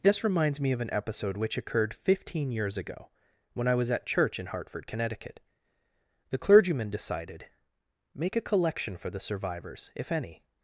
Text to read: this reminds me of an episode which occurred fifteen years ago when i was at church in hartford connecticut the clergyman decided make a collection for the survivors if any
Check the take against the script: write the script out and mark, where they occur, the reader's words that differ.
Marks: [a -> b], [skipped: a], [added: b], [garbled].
this reminds me of an episode which occurred fifteen years ago when i was at church in hartford connecticut the clergyman decided make a collection for the survivors if any